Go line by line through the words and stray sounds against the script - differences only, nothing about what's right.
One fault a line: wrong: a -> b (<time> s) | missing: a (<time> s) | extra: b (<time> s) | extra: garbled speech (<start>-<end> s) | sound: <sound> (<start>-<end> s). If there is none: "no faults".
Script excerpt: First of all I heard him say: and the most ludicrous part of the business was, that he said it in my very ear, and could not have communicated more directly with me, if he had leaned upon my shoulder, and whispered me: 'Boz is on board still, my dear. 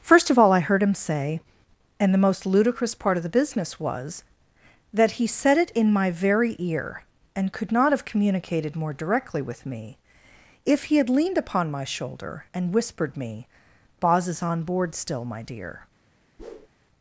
sound: whoosh (16.4-16.7 s)